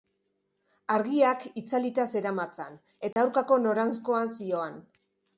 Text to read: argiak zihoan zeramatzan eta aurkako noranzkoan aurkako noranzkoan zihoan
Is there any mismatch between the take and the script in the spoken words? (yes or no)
yes